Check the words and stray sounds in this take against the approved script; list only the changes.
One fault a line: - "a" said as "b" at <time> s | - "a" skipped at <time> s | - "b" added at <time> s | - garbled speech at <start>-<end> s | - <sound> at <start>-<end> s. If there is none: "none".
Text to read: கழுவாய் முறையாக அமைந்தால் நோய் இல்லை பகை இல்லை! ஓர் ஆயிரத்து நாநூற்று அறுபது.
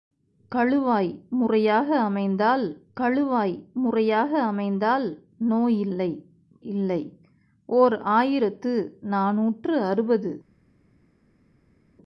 - "கழுவாய் முறையாக அமைந்தால்" added at 3.0 s
- "பகை" skipped at 6.1 s